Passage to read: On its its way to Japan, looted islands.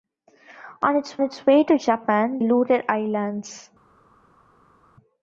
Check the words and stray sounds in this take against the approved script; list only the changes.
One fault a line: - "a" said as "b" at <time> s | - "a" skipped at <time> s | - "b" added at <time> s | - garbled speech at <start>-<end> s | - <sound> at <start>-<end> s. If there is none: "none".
none